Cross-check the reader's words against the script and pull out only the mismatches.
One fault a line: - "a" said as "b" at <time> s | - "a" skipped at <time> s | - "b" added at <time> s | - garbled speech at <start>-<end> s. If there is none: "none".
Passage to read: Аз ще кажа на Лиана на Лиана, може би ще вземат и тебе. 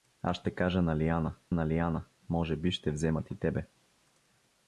none